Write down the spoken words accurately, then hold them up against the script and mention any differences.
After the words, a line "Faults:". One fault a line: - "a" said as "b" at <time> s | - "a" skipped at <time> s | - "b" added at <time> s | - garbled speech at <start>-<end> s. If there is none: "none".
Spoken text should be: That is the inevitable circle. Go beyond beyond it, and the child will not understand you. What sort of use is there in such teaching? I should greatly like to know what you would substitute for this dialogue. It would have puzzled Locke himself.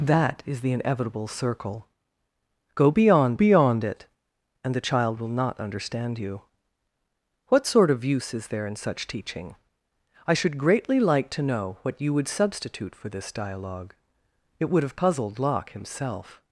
That is the inevitable circle. Go beyond beyond it, and the child will not understand you. What sort of use is there in such teaching? I should greatly like to know what you would substitute for this dialogue. It would have puzzled Locke himself.
Faults:
none